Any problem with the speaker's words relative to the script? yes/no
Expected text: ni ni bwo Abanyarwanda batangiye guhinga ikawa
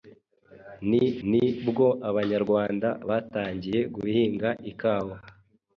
no